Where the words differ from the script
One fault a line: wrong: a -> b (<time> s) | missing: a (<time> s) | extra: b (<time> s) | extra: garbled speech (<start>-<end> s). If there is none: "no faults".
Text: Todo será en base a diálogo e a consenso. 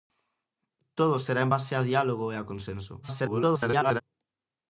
extra: garbled speech (3.0-4.0 s)